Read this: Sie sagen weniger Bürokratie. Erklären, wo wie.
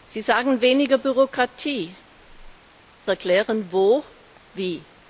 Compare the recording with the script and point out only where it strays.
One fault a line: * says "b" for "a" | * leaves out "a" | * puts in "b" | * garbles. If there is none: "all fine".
all fine